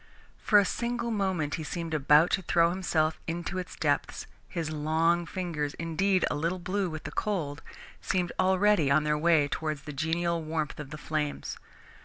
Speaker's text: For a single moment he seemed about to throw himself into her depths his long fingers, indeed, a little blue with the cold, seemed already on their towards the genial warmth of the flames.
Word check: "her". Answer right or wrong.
wrong